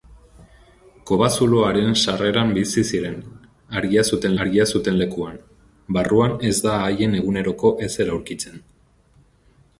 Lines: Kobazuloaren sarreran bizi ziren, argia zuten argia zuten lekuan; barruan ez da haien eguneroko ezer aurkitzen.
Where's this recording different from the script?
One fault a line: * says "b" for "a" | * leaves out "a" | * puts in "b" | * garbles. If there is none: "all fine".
all fine